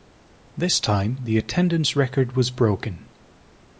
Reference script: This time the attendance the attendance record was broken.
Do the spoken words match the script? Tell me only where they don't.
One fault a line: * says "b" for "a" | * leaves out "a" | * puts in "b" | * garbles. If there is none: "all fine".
* leaves out "the attendance"